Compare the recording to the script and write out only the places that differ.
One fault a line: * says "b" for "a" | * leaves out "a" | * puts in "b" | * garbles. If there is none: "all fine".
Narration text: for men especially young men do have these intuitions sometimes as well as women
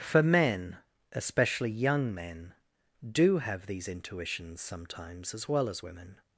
all fine